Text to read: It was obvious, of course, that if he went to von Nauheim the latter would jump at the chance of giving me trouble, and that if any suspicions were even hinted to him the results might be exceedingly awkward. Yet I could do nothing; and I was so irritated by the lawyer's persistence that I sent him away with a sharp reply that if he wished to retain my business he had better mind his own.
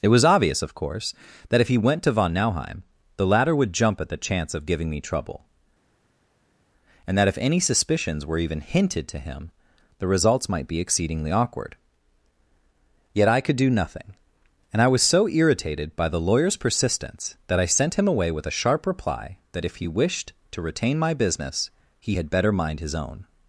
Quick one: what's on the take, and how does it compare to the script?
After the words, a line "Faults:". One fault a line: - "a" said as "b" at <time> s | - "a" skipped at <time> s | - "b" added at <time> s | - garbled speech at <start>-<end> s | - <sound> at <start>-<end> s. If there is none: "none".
It was obvious, of course, that if he went to von Nauheim the latter would jump at the chance of giving me trouble, and that if any suspicions were even hinted to him the results might be exceedingly awkward. Yet I could do nothing; and I was so irritated by the lawyer's persistence that I sent him away with a sharp reply that if he wished to retain my business he had better mind his own.
Faults:
none